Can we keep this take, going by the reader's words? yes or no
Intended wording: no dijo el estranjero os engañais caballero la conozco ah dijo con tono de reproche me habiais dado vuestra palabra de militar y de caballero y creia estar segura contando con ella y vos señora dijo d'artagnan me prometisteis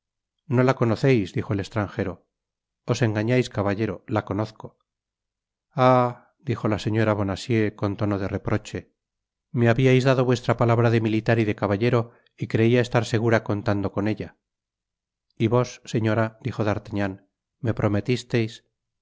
no